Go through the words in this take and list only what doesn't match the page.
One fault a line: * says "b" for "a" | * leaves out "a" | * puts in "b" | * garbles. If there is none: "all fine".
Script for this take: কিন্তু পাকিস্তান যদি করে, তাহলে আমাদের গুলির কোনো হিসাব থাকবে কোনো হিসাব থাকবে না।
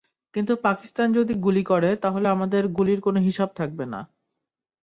* puts in "গুলি"
* leaves out "কোনো হিসাব থাকবে"